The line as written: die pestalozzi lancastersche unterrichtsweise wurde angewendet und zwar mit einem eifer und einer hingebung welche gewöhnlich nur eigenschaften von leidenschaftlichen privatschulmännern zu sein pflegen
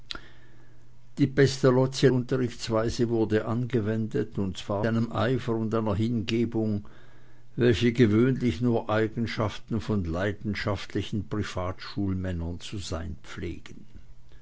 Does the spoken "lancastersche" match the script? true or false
false